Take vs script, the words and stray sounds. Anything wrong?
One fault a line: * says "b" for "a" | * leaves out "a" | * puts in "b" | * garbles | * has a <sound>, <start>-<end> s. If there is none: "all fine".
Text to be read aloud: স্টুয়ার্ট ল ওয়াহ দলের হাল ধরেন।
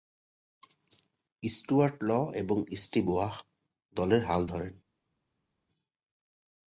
* puts in "এবং স্টিভ"